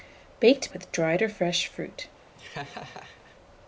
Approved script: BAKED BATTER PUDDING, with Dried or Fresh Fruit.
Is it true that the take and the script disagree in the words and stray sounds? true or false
true